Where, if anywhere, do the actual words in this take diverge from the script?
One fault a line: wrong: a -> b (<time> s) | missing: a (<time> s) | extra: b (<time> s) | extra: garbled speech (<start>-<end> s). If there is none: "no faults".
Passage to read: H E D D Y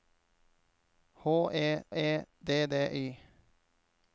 extra: E (2.0 s)